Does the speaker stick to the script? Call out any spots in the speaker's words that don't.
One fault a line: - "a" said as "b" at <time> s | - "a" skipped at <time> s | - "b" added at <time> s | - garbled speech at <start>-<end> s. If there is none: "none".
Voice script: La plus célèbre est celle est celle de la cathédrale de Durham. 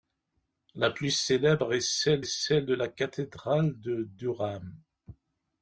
none